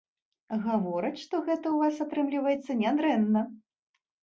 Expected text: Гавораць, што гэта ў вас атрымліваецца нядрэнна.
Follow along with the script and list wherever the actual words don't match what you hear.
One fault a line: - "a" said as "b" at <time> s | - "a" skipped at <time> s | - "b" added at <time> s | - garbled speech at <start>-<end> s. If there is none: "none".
none